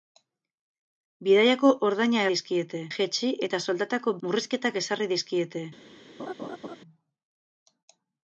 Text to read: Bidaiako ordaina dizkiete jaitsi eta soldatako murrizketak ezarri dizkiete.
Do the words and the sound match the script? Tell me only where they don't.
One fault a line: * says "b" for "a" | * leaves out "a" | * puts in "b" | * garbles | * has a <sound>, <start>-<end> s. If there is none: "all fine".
* has a laugh, 6.2-6.8 s